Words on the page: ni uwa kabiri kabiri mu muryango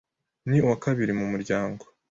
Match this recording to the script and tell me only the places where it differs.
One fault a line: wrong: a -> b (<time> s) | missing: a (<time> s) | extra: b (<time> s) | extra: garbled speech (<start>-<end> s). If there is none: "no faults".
missing: kabiri (1.1 s)